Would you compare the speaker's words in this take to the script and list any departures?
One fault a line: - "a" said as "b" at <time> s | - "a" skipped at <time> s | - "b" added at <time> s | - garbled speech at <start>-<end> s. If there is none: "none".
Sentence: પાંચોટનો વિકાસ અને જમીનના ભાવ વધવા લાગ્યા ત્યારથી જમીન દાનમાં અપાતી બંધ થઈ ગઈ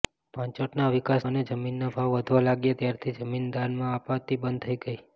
none